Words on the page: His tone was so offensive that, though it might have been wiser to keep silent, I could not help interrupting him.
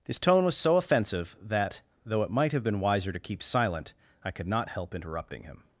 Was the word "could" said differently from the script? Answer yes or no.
no